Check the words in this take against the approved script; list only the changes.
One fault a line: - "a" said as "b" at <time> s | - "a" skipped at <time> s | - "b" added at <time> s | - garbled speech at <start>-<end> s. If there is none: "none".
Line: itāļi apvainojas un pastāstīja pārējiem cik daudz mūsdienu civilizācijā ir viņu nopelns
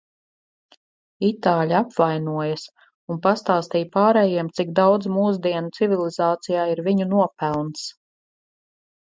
none